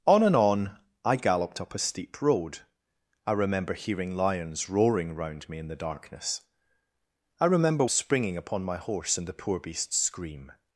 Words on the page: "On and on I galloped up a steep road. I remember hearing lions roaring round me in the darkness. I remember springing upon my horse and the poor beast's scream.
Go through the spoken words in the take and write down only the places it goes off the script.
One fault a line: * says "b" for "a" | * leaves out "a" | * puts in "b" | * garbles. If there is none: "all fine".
all fine